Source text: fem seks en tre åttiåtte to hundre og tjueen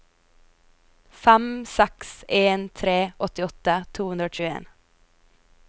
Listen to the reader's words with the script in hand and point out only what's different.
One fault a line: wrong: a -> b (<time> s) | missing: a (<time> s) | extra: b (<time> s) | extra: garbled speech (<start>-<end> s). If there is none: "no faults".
no faults